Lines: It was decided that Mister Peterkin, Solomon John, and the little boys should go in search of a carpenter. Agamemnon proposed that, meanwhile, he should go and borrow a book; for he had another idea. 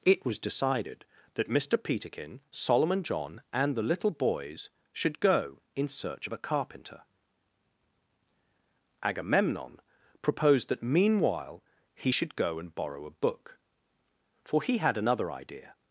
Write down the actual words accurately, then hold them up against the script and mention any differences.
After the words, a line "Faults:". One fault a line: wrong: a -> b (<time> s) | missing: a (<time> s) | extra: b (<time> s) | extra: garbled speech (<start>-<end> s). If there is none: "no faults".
It was decided that Mister Peterkin, Solomon John, and the little boys should go in search of a carpenter. Agamemnon proposed that, meanwhile, he should go and borrow a book; for he had another idea.
Faults:
no faults